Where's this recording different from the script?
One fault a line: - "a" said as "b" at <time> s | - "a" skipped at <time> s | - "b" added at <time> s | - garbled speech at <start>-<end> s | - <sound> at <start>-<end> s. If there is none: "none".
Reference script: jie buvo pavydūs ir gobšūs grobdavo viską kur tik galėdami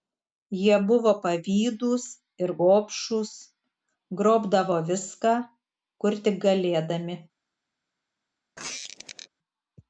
- squeak at 8.6-9.3 s